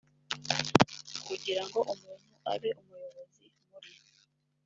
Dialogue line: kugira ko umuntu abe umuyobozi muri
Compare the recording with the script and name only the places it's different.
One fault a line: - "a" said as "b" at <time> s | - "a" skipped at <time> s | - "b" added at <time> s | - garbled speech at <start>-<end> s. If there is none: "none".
- "ko" said as "ngo" at 1.7 s